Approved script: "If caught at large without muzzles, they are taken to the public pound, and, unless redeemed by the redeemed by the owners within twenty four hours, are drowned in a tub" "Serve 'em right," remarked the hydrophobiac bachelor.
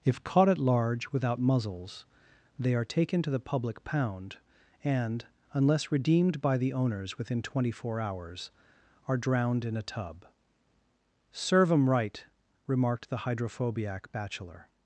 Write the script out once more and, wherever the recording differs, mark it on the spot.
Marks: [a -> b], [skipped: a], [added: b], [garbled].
"If caught at large without muzzles, they are taken to the public pound, and, unless redeemed by the [skipped: redeemed by the] owners within twenty four hours, are drowned in a tub" "Serve 'em right," remarked the hydrophobiac bachelor.